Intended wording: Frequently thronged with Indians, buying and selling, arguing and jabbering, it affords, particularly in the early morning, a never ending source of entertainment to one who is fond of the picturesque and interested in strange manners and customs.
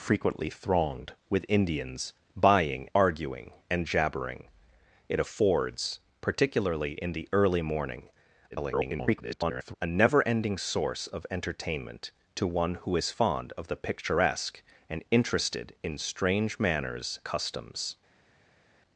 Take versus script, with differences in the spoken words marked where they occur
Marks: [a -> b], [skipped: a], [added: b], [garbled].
Frequently thronged with Indians, buying [skipped: and selling,] arguing and jabbering, it affords, particularly in the early morning, [garbled] a never ending source of entertainment to one who is fond of the picturesque and interested in strange manners [skipped: and] customs.